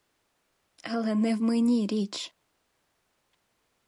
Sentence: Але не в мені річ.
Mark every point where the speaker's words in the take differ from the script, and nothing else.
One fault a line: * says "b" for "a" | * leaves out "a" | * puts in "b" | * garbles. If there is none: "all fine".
all fine